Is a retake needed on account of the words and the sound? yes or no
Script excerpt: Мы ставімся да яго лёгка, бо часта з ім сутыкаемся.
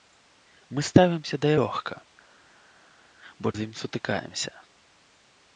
yes